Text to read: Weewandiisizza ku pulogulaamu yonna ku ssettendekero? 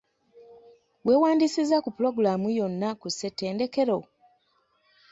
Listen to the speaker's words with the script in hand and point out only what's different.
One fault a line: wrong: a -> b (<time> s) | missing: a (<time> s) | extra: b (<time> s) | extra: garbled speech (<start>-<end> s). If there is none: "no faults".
no faults